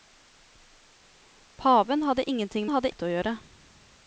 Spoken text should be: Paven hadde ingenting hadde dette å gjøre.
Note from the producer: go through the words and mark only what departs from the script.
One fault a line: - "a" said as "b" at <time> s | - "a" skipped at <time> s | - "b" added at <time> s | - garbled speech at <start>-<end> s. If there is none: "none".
none